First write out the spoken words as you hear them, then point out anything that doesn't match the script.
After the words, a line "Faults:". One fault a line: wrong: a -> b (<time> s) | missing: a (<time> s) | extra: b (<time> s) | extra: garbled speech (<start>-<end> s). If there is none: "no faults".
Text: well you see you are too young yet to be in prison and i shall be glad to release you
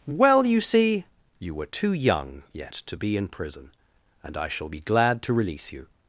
well you see you were too young yet to be in prison and i shall be glad to release you
Faults:
wrong: are -> were (1.5 s)